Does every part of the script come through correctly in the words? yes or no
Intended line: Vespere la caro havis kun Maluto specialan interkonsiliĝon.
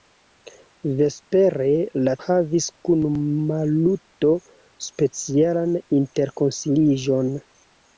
no